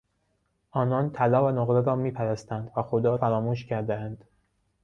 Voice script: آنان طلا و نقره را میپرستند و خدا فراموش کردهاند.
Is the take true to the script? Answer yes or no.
yes